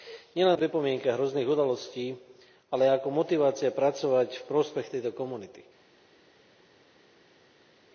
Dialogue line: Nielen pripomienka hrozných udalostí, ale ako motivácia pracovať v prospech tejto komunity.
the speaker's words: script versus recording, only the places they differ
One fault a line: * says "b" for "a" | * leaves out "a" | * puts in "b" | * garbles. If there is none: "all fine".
all fine